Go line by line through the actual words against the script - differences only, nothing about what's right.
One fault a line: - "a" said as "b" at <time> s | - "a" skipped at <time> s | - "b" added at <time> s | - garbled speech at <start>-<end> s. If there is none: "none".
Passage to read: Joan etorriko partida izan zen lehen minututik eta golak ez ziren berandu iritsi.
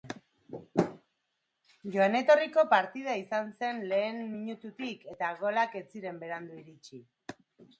none